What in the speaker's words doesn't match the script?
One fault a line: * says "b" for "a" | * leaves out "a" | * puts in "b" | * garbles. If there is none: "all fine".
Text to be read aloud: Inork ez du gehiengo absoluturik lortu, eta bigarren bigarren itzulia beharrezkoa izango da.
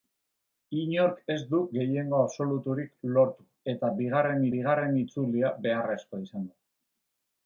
all fine